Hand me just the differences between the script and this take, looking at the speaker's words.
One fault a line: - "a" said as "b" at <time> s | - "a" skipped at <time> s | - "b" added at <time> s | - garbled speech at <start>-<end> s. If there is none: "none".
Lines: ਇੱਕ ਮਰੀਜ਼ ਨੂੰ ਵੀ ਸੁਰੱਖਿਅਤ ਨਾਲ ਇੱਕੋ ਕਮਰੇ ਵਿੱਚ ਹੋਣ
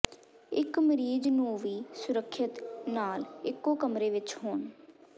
none